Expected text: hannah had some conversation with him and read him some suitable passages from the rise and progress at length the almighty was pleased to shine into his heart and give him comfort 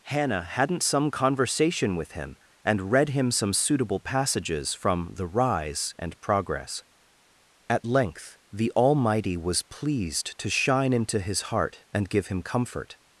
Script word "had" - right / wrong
wrong